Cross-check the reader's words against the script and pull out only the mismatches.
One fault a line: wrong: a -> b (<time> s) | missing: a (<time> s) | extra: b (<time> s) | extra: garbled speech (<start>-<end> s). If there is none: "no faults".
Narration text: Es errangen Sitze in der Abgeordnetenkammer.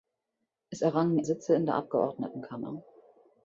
no faults